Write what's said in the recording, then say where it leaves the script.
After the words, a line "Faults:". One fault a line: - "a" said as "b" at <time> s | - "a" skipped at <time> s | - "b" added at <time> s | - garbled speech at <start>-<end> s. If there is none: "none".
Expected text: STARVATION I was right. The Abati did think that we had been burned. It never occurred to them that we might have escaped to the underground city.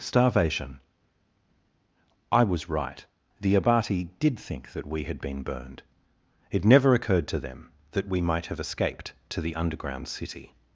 STARVATION I was right. The Abati did think that we had been burned. It never occurred to them that we might have escaped to the underground city.
Faults:
none